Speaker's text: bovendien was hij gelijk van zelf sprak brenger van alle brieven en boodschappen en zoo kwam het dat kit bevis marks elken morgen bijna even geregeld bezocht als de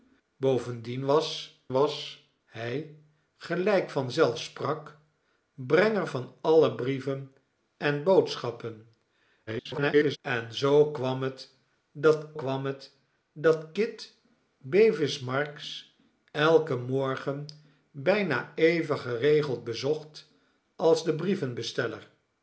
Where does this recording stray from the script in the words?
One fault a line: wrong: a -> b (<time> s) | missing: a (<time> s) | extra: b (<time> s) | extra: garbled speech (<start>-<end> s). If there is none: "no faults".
extra: was (1.7 s)
extra: garbled speech (9.5-10.2 s)
extra: kwam het dat (12.3 s)